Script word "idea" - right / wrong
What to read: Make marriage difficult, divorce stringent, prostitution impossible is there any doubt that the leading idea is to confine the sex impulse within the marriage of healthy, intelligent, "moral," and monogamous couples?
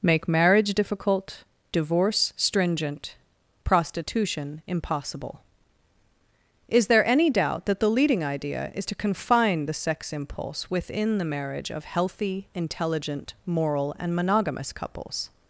right